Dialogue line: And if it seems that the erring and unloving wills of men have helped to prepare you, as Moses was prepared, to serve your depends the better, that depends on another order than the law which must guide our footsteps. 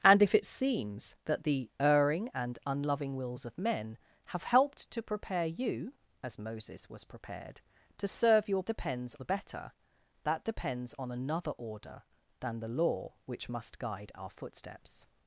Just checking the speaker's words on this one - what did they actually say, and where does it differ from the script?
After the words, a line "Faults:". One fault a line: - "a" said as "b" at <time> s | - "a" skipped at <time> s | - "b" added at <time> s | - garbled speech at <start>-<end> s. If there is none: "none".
And if it seems that the erring and unloving wills of men have helped to prepare you, as Moses was prepared, to serve your depends the better, that depends on another order than the law which must guide our footsteps.
Faults:
none